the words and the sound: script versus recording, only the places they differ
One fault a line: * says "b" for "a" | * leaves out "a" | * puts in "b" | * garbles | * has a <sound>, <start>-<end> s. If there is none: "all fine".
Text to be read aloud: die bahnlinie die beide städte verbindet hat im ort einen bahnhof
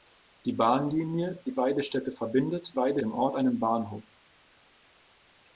* says "beide" for "hat"